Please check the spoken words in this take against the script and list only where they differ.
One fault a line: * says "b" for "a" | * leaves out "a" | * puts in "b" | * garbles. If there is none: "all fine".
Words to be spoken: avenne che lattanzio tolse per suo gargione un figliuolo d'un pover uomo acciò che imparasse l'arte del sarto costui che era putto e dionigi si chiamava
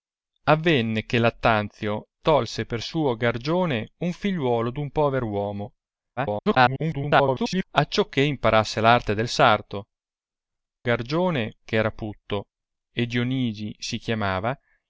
* garbles
* says "gargione" for "costui"